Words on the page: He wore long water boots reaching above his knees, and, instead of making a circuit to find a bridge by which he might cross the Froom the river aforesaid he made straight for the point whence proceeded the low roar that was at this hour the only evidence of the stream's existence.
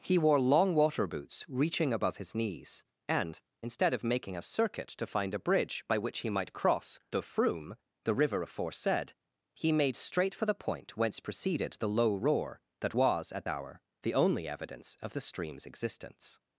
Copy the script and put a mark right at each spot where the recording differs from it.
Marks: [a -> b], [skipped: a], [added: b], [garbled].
He wore long water boots reaching above his knees, and, instead of making a circuit to find a bridge by which he might cross the Froom the river aforesaid he made straight for the point whence proceeded the low roar that was at [skipped: this] hour the only evidence of the stream's existence.